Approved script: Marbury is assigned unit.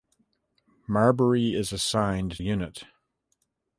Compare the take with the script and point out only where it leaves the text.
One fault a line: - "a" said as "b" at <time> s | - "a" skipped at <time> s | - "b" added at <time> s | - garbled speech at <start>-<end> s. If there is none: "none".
none